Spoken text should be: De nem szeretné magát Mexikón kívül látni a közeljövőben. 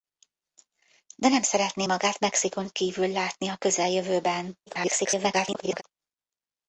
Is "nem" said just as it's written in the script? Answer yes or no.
yes